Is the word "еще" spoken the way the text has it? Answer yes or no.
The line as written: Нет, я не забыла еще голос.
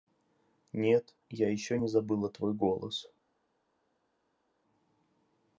no